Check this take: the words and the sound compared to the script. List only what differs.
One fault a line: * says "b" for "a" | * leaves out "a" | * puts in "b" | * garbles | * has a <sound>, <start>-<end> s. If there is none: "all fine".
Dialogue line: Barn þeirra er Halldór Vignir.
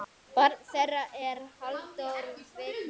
all fine